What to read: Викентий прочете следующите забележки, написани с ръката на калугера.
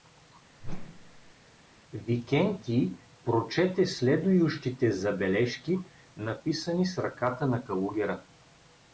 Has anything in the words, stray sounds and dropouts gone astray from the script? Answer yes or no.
yes